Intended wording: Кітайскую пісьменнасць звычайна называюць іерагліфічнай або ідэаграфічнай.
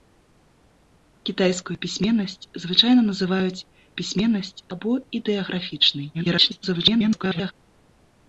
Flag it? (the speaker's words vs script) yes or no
yes